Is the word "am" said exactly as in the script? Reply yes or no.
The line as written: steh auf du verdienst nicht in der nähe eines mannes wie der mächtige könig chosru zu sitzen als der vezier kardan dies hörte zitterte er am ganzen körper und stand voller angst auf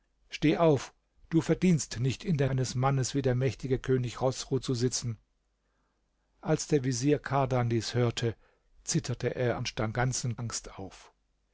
no